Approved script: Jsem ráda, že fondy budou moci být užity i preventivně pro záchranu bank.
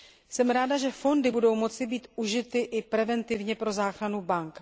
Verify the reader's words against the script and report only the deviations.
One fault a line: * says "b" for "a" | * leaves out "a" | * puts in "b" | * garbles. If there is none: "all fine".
all fine